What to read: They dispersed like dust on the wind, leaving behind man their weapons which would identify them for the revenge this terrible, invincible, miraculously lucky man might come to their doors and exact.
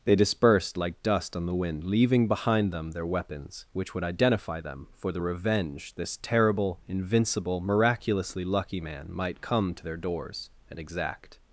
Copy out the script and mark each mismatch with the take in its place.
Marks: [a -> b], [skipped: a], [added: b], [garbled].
They dispersed like dust on the wind, leaving behind [man -> them] their weapons which would identify them for the revenge this terrible, invincible, miraculously lucky man might come to their doors and exact.